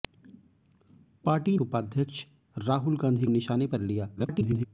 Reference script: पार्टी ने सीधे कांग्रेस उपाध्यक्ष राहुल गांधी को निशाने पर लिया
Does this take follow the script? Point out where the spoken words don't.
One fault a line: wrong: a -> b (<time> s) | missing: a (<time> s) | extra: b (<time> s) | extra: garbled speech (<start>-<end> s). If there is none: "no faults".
missing: ने सीधे कांग्रेस (1.6 s)
missing: को (3.3 s)
extra: garbled speech (4.2-4.7 s)